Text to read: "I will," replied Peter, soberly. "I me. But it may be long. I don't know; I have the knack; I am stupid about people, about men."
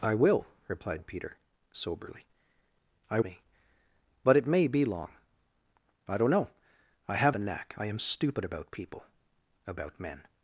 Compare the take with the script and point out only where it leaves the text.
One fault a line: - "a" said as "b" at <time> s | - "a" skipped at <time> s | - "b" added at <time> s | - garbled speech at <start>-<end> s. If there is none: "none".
none